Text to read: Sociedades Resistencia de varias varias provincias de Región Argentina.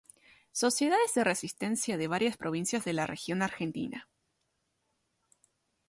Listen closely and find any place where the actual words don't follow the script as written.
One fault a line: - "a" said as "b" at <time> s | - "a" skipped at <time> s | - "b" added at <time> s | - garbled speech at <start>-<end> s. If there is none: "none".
- "de" added at 1.1 s
- "varias" skipped at 2.4 s
- "la" added at 2.9 s